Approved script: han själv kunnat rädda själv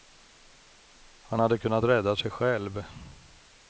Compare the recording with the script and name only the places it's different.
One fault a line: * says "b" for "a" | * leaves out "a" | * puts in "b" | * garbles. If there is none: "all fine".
* says "hade" for "själv"
* puts in "sig"